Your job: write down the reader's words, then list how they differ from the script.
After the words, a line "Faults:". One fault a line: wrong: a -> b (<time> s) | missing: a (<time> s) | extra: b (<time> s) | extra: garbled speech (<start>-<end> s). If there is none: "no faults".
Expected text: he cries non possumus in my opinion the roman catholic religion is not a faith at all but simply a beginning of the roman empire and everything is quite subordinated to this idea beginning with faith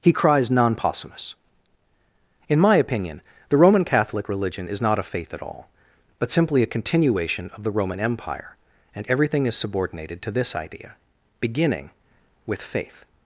he cries non possumus in my opinion the roman catholic religion is not a faith at all but simply a continuation of the roman empire and everything is subordinated to this idea beginning with faith
Faults:
wrong: beginning -> continuation (6.7 s)
missing: quite (9.6 s)